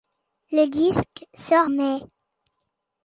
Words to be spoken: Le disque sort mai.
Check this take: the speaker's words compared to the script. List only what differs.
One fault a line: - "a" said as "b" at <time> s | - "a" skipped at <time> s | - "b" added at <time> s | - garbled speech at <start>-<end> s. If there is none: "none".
none